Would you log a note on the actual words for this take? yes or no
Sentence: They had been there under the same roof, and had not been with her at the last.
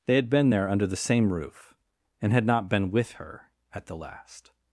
no